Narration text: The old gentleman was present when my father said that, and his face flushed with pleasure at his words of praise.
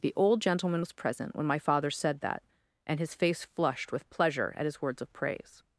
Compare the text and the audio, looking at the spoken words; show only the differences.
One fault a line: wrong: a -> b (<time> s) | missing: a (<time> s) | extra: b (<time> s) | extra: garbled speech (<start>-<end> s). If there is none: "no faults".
no faults